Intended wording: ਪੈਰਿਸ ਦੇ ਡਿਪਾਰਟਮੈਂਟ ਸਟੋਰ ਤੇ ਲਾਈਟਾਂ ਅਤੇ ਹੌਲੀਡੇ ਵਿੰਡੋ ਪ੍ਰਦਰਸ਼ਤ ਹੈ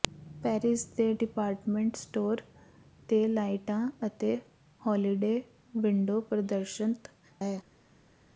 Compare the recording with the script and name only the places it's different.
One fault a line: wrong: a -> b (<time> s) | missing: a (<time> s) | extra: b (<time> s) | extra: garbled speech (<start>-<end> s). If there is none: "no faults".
no faults